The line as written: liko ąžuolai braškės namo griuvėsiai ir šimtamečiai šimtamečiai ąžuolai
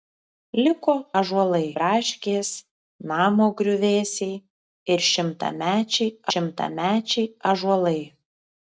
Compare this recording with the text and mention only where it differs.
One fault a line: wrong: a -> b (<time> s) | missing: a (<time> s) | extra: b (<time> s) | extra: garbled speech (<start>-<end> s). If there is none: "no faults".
no faults